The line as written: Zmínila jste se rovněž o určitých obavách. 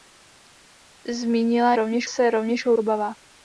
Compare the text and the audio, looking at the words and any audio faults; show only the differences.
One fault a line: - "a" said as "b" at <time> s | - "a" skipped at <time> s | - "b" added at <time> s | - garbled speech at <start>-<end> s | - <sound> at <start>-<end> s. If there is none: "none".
- "jste" said as "rovněž" at 1.7 s
- "určitých" skipped at 2.7 s